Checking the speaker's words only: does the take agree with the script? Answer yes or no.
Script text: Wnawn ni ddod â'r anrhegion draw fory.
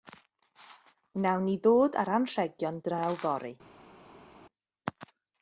yes